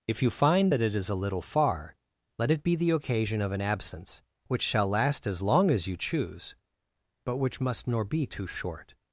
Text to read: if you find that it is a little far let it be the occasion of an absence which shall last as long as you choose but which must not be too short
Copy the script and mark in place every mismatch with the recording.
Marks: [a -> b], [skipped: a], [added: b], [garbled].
if you find that it is a little far let it be the occasion of an absence which shall last as long as you choose but which must [not -> nor] be too short